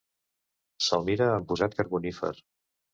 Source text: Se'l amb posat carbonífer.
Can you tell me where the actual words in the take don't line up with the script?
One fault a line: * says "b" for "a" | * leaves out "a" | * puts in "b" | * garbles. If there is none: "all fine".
* puts in "mira"